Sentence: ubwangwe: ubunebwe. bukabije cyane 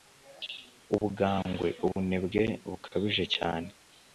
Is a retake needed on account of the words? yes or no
no